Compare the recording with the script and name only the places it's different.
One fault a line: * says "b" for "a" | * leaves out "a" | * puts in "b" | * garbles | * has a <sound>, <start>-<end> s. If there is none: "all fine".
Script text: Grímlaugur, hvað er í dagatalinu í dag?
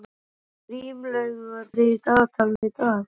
* leaves out "hvað"
* has a dropout, 2.6-2.6 s